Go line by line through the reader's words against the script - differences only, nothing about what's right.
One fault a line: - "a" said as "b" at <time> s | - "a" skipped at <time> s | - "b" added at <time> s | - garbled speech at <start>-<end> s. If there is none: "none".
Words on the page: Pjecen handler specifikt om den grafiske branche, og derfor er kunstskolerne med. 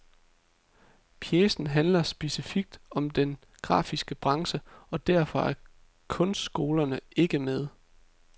- "ikke" added at 7.2 s